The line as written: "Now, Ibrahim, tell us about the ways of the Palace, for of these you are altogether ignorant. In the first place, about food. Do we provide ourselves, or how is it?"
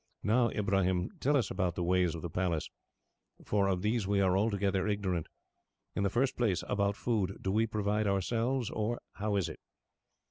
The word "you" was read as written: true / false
false